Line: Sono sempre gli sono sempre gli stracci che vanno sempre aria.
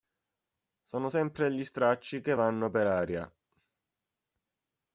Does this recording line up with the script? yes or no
no